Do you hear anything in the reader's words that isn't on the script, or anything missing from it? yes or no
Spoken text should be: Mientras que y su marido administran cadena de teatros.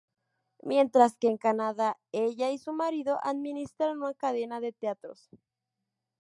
yes